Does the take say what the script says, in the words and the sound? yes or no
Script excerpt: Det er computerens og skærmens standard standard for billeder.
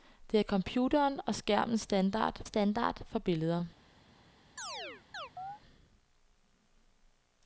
no